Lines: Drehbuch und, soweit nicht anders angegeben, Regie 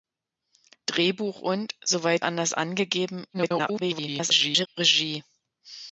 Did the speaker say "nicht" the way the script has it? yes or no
no